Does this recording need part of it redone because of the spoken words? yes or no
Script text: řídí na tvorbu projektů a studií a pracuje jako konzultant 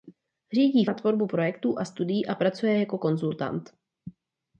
no